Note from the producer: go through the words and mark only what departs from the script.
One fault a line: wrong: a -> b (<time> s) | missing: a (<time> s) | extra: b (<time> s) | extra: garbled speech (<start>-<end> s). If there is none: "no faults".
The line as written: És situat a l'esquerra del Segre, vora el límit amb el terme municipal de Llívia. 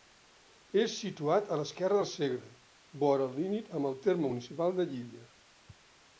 no faults